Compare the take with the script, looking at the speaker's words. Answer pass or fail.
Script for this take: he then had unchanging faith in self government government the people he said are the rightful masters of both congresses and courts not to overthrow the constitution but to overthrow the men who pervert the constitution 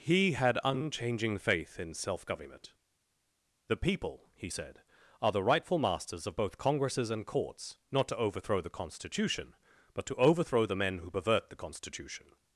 fail